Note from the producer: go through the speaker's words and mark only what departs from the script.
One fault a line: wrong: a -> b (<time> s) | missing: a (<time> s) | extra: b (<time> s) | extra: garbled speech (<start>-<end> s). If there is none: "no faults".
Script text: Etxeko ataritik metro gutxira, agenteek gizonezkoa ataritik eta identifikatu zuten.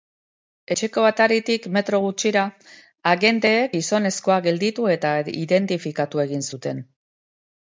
wrong: ataritik -> gelditu (4.5 s)
extra: egin (6.3 s)